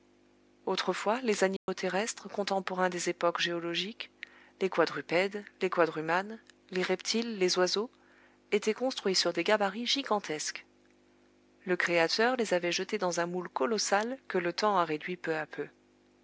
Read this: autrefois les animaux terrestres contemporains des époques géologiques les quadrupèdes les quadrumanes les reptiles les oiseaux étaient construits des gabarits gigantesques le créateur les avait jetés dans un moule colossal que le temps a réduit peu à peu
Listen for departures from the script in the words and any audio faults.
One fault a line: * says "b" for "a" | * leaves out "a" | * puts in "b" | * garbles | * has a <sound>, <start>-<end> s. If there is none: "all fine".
* has a dropout, 1.6-1.7 s
* puts in "sur"